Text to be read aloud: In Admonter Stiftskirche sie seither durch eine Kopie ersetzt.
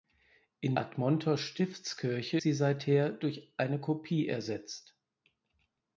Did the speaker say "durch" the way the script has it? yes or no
yes